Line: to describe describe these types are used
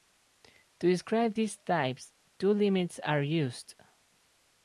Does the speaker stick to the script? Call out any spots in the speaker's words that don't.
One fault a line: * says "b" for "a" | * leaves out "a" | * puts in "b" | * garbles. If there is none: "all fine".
* leaves out "describe"
* puts in "two limits"